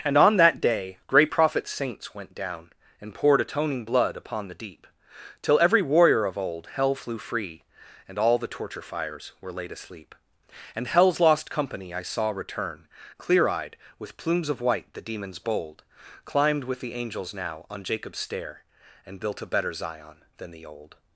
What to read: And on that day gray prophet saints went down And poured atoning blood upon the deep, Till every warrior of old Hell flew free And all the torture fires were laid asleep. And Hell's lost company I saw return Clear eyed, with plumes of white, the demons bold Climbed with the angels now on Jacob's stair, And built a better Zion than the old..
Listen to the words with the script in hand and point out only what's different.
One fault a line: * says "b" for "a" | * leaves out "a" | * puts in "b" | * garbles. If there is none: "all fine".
all fine